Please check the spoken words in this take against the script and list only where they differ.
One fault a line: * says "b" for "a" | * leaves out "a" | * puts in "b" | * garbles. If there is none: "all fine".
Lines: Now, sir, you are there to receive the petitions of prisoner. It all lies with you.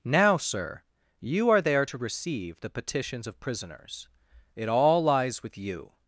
* says "prisoners" for "prisoner"